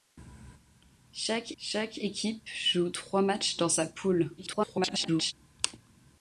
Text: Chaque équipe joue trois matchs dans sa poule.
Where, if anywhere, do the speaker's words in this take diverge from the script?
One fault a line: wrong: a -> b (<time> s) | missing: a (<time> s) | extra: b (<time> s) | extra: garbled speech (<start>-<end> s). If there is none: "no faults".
extra: chaque (1.6 s)
extra: garbled speech (4.4-5.3 s)